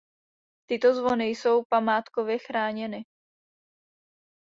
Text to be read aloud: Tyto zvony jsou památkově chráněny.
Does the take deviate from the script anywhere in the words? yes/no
no